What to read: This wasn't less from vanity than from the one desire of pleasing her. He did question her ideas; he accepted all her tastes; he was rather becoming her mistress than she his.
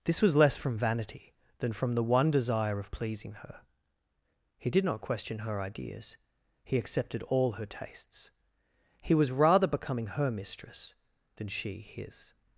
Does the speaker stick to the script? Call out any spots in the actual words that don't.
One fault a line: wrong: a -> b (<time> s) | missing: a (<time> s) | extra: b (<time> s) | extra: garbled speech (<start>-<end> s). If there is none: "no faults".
wrong: wasn't -> was (0.2 s)
extra: not (4.8 s)